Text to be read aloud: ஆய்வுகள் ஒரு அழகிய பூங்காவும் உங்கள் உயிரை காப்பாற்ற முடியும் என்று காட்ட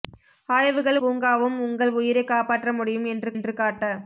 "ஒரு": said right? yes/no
no